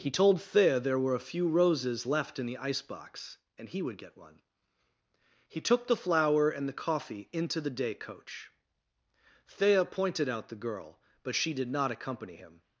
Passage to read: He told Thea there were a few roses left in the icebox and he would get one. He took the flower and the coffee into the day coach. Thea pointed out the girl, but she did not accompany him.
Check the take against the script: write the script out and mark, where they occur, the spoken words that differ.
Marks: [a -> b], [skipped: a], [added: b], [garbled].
He told Thea there were a few roses left in the icebox and he would get one. He took the flower and the coffee into the day coach. Thea pointed out the girl, but she did not accompany him.